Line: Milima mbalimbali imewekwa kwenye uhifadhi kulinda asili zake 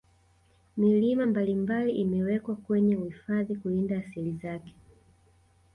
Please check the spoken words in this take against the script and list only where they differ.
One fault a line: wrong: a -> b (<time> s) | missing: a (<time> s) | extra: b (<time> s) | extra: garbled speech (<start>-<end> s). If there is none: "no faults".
no faults